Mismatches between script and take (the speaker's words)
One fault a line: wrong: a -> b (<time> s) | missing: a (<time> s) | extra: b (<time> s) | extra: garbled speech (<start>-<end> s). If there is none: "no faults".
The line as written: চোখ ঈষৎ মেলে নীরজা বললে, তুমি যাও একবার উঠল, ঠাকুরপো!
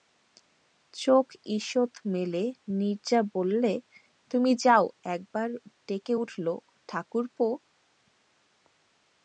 extra: ডেকে (5.9 s)